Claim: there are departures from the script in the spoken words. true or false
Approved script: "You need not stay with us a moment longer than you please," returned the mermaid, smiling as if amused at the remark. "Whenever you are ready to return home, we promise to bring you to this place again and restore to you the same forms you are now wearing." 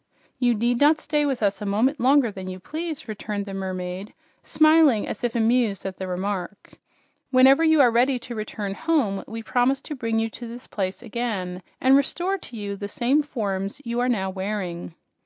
false